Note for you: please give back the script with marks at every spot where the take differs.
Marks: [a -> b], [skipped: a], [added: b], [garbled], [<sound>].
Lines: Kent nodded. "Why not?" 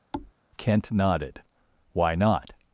[thud] Kent nodded. "Why not?"